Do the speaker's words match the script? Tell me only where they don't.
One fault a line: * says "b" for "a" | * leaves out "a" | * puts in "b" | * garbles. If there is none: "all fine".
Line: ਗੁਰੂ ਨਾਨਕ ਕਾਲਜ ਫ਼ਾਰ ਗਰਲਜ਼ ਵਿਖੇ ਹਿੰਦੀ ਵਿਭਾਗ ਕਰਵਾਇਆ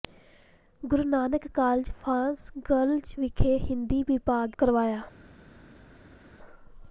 all fine